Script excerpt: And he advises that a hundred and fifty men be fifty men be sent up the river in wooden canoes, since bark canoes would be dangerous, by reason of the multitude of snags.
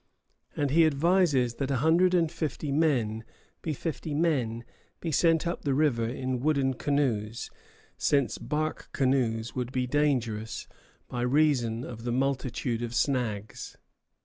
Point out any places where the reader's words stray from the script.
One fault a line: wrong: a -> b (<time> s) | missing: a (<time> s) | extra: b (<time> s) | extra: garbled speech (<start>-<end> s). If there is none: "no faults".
no faults